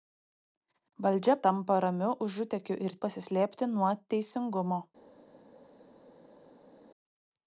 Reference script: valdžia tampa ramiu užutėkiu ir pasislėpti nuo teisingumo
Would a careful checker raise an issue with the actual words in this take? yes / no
no